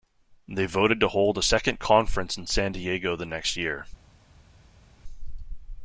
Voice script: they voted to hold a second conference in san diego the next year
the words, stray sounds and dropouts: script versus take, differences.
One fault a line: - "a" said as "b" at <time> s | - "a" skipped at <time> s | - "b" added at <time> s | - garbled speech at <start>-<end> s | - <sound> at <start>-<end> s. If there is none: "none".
none